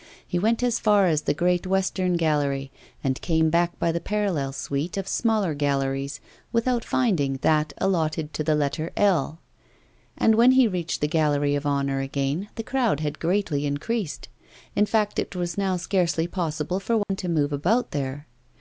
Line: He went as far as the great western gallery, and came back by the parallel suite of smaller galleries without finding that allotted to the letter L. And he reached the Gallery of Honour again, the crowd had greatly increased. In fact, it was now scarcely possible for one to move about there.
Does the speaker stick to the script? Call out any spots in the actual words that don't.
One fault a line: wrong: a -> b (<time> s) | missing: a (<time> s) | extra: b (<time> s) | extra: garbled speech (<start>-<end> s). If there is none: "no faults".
extra: when (10.3 s)